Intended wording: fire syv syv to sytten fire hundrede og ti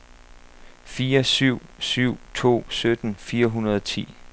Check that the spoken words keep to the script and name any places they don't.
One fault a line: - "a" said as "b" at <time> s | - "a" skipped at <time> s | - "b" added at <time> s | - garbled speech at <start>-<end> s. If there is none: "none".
none